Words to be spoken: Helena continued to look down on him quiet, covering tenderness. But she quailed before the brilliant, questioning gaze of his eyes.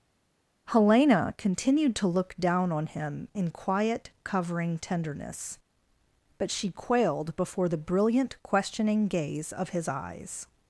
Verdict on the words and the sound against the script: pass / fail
fail